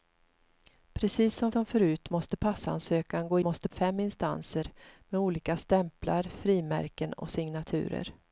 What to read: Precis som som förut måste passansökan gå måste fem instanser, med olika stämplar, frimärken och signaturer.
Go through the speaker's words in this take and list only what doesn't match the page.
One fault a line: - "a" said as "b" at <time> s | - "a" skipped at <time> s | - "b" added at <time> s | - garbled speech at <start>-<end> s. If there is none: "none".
none